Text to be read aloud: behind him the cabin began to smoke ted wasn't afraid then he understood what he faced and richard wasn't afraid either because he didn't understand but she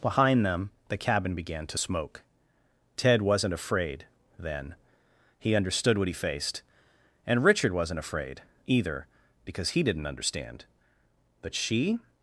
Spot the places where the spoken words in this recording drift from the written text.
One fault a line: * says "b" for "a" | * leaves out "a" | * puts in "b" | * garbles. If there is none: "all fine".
* says "them" for "him"